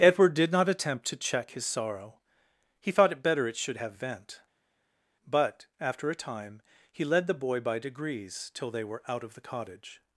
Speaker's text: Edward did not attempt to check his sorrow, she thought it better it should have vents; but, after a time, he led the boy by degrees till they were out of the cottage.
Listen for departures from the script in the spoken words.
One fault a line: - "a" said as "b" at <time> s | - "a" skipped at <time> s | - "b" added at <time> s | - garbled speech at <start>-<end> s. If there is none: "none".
- "she" said as "he" at 2.8 s
- "vents" said as "vent" at 3.9 s